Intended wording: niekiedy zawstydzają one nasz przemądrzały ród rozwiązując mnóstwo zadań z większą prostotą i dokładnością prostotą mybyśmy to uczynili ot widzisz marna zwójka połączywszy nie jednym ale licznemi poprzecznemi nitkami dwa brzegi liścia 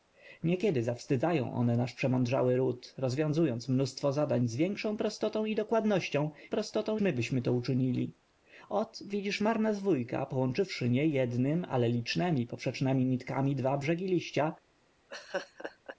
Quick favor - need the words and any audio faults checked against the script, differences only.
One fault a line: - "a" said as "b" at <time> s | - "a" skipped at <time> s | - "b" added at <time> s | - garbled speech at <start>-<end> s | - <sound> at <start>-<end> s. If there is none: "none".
- laugh at 15.1-16.0 s